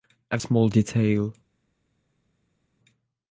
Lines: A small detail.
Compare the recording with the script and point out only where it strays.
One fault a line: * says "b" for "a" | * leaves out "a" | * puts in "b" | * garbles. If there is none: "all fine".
all fine